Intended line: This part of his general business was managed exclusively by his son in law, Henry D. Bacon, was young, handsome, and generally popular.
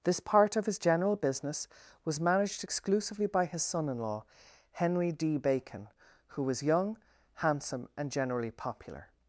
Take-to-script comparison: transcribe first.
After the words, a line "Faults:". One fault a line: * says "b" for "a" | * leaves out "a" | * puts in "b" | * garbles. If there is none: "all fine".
This part of his general business was managed exclusively by his son in law, Henry D. Bacon, who was young, handsome, and generally popular.
Faults:
* puts in "who"